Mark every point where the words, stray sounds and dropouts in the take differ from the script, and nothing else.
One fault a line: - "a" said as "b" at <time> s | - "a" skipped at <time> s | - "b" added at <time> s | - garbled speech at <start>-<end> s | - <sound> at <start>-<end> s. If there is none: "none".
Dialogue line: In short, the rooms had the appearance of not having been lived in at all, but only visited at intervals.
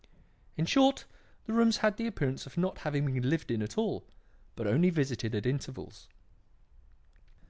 none